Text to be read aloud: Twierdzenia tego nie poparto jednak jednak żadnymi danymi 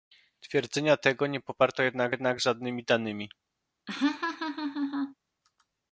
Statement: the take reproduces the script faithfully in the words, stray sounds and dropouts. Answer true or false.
false